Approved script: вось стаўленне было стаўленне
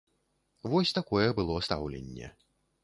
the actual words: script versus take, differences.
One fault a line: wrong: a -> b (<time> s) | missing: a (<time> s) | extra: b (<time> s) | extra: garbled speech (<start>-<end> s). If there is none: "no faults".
wrong: стаўленне -> такое (1.0 s)